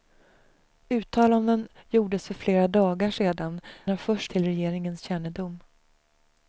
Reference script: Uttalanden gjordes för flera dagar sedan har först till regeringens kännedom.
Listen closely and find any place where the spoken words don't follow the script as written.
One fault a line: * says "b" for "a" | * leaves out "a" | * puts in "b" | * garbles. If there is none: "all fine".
all fine